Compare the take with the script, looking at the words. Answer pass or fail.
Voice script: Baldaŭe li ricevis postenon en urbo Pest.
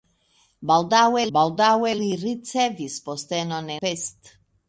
fail